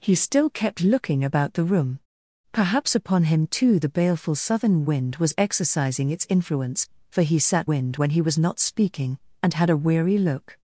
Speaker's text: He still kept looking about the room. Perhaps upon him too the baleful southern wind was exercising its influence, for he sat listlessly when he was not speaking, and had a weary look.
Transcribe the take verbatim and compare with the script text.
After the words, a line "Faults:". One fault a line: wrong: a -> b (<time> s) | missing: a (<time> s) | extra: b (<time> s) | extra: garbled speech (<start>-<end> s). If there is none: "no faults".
He still kept looking about the room. Perhaps upon him too the baleful southern wind was exercising its influence, for he sat wind when he was not speaking, and had a weary look.
Faults:
wrong: listlessly -> wind (7.6 s)